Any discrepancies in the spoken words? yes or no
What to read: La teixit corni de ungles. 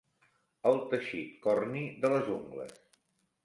yes